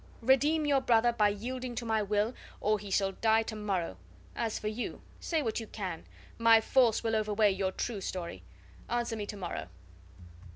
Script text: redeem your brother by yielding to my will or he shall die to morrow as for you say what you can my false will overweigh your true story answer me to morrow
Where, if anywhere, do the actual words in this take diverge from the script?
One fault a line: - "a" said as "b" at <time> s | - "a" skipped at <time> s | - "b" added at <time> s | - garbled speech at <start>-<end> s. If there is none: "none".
none